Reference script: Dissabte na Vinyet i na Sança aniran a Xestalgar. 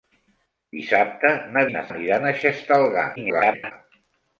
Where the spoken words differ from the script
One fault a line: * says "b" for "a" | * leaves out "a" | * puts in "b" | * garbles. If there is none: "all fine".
* leaves out "Vinyet"
* leaves out "Sança"
* garbles